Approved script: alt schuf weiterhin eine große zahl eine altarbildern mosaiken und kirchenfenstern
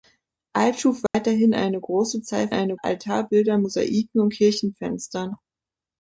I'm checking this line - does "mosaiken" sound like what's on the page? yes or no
yes